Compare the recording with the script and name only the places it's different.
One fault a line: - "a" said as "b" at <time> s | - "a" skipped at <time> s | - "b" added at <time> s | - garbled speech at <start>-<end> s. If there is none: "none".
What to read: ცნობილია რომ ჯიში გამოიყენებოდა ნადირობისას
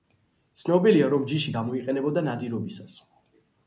none